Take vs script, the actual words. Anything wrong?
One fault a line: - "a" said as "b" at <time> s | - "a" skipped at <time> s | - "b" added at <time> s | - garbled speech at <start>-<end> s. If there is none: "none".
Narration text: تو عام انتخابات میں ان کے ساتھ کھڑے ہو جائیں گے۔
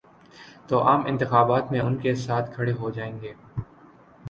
none